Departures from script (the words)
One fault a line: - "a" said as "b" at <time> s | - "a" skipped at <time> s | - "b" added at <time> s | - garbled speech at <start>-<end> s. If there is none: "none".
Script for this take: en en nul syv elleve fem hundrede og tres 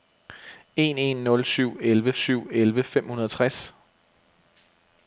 - "syv elleve" added at 2.2 s